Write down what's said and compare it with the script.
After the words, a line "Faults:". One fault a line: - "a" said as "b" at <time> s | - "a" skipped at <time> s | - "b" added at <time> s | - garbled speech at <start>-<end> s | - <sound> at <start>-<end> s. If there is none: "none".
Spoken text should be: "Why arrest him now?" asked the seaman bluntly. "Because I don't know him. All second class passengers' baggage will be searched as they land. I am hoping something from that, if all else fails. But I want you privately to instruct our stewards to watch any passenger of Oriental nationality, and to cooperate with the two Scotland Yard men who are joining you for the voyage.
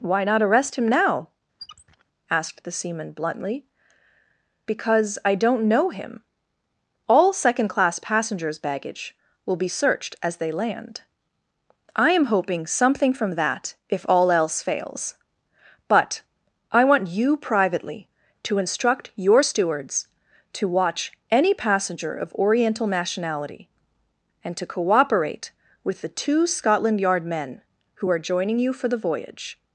"Why not arrest him now?" asked the seaman bluntly. "Because I don't know him. All second class passengers' baggage will be searched as they land. I am hoping something from that, if all else fails. But I want you privately to instruct your stewards to watch any passenger of Oriental nationality, and to cooperate with the two Scotland Yard men who are joining you for the voyage.
Faults:
- "not" added at 0.2 s
- squeak at 1.6-2.0 s
- "our" said as "your" at 19.2 s